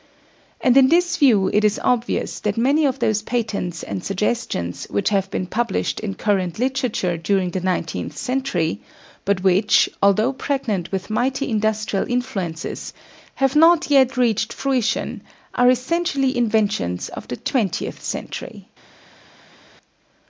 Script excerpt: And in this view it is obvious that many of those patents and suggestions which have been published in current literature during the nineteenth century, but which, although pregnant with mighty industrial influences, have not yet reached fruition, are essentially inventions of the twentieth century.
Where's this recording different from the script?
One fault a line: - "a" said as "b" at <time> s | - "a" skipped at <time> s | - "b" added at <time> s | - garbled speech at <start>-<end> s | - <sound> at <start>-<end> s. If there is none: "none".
none